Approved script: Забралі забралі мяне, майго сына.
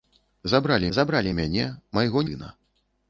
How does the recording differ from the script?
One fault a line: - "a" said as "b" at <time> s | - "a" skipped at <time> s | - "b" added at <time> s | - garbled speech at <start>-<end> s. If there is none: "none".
none